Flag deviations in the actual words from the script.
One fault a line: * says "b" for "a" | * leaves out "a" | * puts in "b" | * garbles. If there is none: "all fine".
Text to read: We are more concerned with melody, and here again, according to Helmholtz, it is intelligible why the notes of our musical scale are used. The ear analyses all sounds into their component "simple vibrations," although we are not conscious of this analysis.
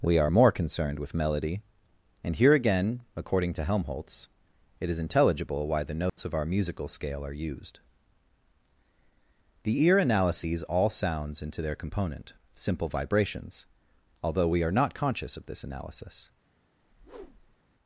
all fine